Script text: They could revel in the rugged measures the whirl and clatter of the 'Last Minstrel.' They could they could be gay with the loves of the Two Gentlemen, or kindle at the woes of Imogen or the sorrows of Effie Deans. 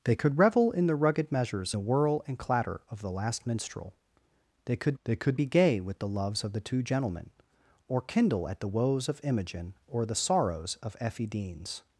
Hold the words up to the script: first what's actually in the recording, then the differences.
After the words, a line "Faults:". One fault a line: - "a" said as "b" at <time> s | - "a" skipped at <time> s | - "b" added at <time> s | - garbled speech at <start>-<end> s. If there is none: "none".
They could revel in the rugged measures the whirl and clatter of the 'Last Minstrel.' They could they could be gay with the loves of the Two Gentlemen, or kindle at the woes of Imogen or the sorrows of Effie Deans.
Faults:
none